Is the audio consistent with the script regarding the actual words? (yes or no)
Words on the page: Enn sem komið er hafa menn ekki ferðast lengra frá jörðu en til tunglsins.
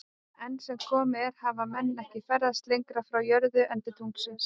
yes